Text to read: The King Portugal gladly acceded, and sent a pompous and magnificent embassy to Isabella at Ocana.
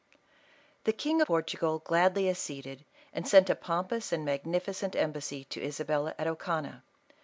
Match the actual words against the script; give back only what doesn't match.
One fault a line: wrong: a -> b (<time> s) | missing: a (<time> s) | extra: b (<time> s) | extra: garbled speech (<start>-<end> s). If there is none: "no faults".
no faults